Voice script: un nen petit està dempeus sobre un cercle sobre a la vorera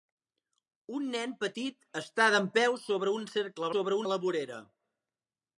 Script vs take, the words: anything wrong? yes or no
no